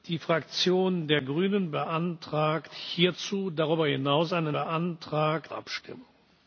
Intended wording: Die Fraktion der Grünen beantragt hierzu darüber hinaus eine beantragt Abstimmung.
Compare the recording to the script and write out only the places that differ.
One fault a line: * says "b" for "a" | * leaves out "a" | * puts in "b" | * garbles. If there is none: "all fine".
all fine